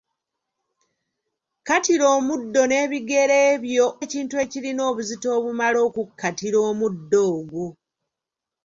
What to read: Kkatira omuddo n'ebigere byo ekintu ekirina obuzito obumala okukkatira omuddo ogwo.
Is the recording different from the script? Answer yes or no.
no